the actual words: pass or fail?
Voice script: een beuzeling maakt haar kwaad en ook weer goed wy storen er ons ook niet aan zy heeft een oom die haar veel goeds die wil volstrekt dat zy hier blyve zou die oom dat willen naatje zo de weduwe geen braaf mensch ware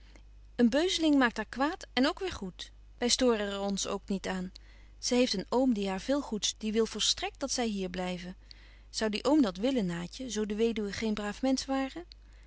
pass